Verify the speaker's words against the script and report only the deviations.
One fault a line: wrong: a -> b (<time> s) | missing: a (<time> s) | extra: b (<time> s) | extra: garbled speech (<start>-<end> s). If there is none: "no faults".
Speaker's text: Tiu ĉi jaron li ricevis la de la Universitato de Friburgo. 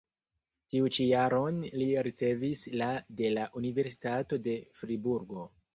no faults